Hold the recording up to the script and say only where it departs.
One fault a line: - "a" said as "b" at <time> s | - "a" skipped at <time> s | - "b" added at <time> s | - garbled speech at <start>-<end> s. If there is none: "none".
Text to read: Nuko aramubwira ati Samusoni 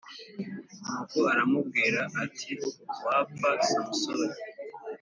- "Wapfa" added at 3.0 s